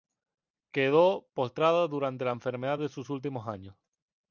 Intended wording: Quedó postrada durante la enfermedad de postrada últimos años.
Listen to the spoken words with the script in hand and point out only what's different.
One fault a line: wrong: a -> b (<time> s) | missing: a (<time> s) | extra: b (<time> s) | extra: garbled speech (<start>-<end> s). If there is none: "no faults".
wrong: postrada -> sus (2.9 s)